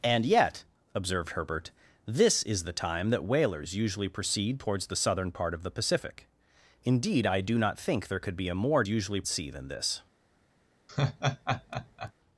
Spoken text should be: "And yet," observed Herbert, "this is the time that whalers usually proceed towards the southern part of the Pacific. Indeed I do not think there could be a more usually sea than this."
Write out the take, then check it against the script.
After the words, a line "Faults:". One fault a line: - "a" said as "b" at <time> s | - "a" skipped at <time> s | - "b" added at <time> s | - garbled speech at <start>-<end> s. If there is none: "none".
"And yet," observed Herbert, "this is the time that whalers usually proceed towards the southern part of the Pacific. Indeed I do not think there could be a more usually sea than this."
Faults:
none